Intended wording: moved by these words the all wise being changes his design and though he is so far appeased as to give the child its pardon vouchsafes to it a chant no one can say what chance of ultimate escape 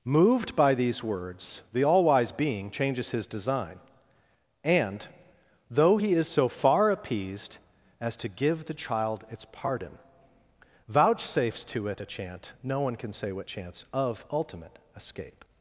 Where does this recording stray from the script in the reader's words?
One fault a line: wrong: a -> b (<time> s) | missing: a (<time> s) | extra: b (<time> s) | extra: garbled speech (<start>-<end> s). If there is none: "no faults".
no faults